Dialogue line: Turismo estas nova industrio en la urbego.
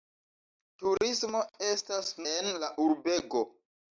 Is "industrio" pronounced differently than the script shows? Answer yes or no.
yes